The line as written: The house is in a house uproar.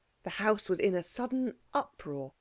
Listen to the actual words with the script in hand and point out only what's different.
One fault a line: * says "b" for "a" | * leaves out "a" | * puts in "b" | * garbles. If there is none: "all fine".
* says "was" for "is"
* says "sudden" for "house"